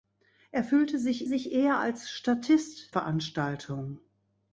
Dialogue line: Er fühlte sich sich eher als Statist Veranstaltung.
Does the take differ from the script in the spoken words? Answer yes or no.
no